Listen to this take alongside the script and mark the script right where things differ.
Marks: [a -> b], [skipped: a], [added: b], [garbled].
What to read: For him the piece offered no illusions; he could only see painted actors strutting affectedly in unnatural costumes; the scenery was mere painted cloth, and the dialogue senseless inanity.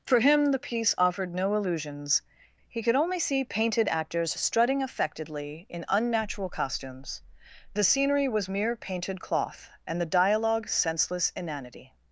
For him the piece offered no illusions; he could only see painted actors strutting affectedly in unnatural costumes; the scenery was mere painted cloth, and the dialogue senseless inanity.